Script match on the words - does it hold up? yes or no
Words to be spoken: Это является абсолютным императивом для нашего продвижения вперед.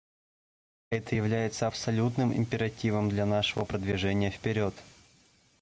yes